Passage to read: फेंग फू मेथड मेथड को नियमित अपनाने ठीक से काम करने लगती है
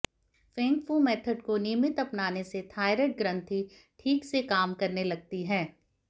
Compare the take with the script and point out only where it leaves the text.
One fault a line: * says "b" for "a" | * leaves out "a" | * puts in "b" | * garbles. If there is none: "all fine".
* leaves out "मेथड"
* puts in "से थायराइड ग्रंथि"